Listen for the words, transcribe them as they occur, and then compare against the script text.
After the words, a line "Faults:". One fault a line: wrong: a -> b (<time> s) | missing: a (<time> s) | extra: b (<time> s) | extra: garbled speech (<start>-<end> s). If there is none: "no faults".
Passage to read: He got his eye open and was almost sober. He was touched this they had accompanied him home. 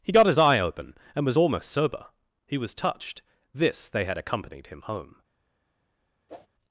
He got his eye open and was almost sober. He was touched this they had accompanied him home.
Faults:
no faults